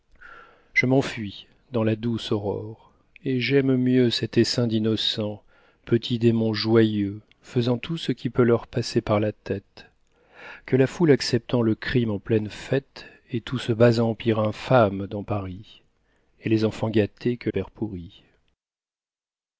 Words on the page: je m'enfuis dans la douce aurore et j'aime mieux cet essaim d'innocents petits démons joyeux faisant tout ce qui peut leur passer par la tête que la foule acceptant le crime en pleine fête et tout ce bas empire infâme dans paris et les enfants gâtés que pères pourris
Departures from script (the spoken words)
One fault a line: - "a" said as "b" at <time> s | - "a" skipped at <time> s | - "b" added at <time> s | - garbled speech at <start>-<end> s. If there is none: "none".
none